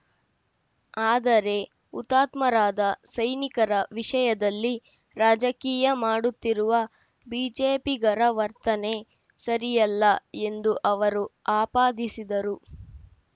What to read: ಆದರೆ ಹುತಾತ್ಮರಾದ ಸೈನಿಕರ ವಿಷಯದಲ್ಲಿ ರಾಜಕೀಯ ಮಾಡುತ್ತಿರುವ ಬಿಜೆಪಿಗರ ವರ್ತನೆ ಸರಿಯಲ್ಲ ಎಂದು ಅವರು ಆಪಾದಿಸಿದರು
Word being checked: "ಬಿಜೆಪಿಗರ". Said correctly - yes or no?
yes